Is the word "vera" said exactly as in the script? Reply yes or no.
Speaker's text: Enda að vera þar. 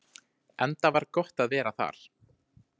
yes